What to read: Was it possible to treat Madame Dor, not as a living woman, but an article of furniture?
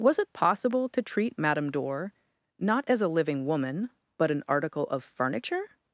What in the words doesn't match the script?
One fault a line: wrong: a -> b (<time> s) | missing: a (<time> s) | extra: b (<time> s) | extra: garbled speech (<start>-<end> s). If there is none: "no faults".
no faults